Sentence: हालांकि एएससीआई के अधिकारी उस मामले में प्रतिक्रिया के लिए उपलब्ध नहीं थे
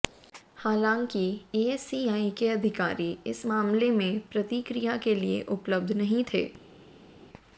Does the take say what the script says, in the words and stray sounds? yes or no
no